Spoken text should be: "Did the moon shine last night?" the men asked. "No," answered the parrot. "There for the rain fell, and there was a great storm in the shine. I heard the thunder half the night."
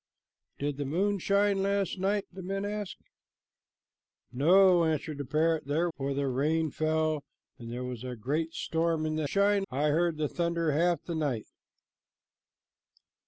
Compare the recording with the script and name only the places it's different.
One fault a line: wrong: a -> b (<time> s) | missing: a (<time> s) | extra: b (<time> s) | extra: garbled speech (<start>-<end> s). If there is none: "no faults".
no faults